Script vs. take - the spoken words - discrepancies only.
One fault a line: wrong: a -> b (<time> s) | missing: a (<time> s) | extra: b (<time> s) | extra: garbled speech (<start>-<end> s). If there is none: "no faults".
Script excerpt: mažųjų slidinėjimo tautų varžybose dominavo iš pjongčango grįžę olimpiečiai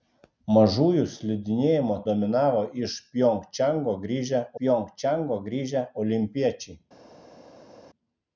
wrong: tautų varžybose dominavo iš -> dominavo iš pjongčango grįžę (2.1 s)